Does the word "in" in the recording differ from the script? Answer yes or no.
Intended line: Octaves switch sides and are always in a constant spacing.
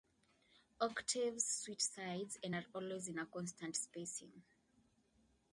no